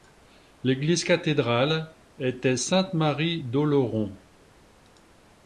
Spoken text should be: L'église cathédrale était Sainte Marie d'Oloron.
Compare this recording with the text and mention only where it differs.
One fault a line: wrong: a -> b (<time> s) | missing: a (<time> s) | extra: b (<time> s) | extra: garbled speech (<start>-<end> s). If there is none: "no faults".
no faults